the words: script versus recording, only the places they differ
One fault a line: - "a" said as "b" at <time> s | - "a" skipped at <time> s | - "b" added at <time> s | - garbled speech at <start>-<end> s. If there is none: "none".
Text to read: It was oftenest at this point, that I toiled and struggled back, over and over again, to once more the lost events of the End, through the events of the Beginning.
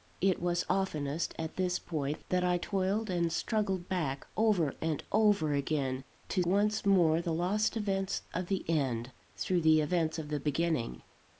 none